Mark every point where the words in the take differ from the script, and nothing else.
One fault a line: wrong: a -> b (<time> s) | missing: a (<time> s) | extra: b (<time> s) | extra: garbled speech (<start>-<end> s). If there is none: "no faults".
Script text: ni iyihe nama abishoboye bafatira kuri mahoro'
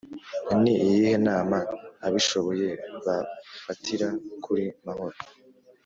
no faults